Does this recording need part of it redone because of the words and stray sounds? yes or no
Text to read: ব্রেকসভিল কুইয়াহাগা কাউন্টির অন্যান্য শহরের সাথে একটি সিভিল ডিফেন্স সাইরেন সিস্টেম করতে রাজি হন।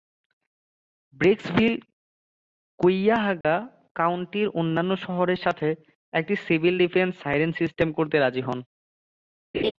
yes